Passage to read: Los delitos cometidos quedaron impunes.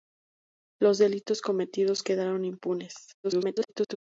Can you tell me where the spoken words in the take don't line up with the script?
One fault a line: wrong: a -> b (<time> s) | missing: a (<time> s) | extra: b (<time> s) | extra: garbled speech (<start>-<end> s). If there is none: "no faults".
extra: garbled speech (3.2-4.0 s)